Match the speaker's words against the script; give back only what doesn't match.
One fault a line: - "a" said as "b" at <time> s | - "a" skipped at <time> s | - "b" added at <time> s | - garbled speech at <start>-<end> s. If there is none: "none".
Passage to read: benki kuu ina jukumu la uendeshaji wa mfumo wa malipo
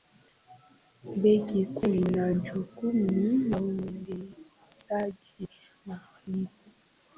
- "wa mfumo wa" skipped at 5.5 s